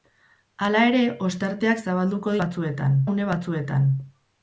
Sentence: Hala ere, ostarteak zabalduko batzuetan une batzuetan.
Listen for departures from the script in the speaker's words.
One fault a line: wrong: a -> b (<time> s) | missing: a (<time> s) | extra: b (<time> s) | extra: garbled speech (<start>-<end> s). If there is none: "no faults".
no faults